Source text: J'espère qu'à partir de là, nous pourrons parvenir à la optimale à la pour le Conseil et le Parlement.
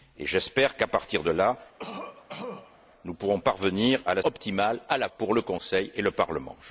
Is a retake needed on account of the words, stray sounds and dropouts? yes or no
yes